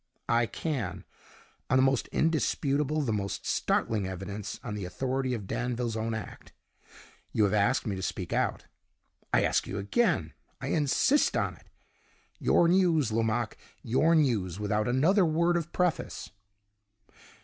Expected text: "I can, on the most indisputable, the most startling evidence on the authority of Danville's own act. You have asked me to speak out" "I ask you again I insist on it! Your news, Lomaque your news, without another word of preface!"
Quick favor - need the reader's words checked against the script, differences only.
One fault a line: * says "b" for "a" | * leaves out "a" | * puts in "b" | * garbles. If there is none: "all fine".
all fine